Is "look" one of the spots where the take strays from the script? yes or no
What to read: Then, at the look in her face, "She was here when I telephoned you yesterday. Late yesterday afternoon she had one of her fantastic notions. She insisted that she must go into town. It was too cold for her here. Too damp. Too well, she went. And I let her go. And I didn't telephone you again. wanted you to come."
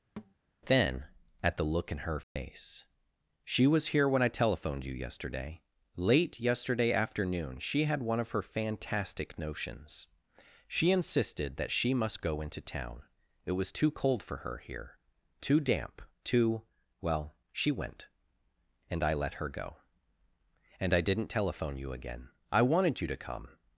no